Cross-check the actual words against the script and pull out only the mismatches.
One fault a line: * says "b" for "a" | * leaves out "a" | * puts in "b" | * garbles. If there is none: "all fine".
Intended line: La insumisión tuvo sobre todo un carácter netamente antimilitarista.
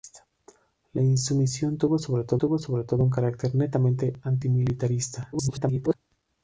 * puts in "tuvo sobre todo"
* garbles